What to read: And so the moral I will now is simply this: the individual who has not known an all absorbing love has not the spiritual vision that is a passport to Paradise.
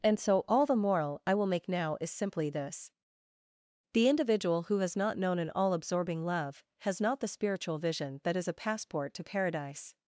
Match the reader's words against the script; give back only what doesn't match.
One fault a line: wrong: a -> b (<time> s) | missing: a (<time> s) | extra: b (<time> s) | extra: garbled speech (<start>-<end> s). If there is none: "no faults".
extra: all (0.5 s)
extra: make (1.4 s)